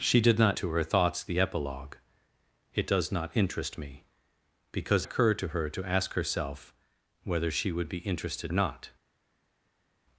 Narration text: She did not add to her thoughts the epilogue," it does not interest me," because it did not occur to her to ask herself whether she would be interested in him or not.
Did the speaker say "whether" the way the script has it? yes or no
yes